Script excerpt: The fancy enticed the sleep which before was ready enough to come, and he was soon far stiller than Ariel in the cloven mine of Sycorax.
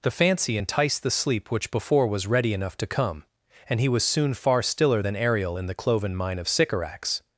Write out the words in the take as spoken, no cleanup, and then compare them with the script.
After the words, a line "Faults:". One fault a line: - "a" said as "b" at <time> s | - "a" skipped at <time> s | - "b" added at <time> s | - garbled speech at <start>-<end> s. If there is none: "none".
The fancy enticed the sleep which before was ready enough to come, and he was soon far stiller than Ariel in the cloven mine of Sycorax.
Faults:
none